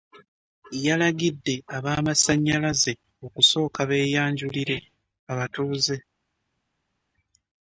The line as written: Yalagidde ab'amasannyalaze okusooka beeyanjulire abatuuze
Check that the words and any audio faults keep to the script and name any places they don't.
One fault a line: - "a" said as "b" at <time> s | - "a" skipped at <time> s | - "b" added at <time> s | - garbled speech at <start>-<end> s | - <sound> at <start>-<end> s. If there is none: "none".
none